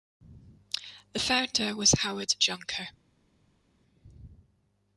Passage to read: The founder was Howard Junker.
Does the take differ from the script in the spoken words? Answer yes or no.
no